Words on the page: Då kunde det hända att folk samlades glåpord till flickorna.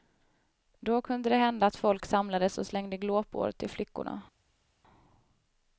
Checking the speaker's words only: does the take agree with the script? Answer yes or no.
no